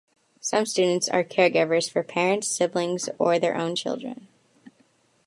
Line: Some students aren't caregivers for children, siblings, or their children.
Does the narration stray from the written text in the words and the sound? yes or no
yes